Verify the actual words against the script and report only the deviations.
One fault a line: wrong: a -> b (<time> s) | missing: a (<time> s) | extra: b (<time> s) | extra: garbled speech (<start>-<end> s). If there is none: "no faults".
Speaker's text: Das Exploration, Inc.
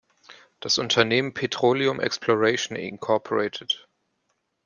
extra: Unternehmen Petroleum (0.8 s)